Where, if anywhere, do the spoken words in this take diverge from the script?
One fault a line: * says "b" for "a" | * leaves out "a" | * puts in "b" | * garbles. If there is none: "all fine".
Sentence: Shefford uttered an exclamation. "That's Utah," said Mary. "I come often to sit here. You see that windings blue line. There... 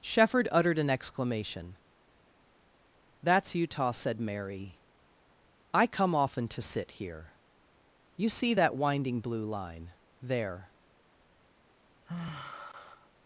* says "winding" for "windings"